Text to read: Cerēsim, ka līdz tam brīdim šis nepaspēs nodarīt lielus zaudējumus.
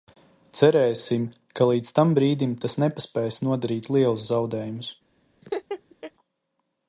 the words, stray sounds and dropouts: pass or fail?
fail